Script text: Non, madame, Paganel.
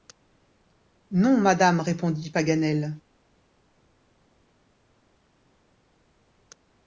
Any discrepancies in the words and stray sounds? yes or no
yes